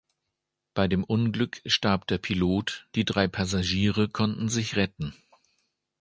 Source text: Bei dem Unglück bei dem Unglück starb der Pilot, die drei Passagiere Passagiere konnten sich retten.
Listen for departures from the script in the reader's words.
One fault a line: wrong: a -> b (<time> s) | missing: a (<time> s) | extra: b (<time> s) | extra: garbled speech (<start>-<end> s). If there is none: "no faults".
missing: bei dem Unglück (1.6 s)
missing: Passagiere (4.1 s)